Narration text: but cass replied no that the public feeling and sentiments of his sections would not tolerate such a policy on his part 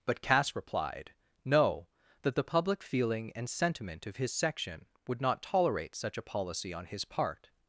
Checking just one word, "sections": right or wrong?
wrong